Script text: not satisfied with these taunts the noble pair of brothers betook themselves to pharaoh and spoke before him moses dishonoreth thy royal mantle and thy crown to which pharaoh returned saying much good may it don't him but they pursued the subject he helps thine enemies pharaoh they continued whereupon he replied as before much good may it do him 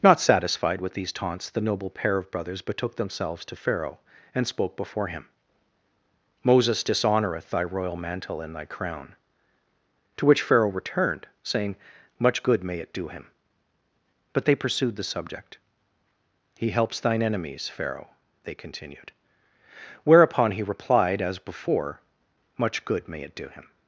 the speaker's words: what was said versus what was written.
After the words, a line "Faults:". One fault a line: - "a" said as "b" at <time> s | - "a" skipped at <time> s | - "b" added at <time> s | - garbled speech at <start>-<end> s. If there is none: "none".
not satisfied with these taunts the noble pair of brothers betook themselves to pharaoh and spoke before him moses dishonoreth thy royal mantle and thy crown to which pharaoh returned saying much good may it do him but they pursued the subject he helps thine enemies pharaoh they continued whereupon he replied as before much good may it do him
Faults:
- "don't" said as "do" at 12.9 s